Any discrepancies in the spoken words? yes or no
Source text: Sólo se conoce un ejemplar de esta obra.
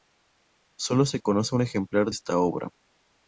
yes